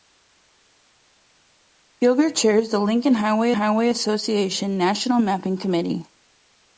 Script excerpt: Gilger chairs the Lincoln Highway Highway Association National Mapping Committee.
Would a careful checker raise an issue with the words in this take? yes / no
no